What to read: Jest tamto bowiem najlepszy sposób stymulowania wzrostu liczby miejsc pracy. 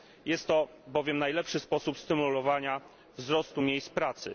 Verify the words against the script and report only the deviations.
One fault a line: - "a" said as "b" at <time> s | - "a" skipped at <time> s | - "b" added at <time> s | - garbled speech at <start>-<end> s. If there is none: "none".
- "tamto" said as "to" at 0.5 s